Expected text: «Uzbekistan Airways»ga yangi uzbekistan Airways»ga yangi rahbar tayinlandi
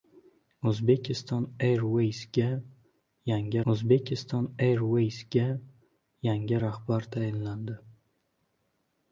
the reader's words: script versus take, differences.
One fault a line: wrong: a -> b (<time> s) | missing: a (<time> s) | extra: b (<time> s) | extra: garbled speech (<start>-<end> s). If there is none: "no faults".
no faults